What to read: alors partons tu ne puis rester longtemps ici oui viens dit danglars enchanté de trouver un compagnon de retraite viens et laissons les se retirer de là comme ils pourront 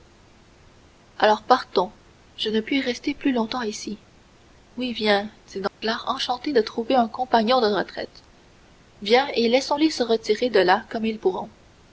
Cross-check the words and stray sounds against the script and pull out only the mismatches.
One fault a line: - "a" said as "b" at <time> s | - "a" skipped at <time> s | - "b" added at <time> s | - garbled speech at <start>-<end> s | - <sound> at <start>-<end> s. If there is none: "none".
- "tu" said as "je" at 2.4 s
- "plus" added at 3.1 s
- dropout at 5.7-5.8 s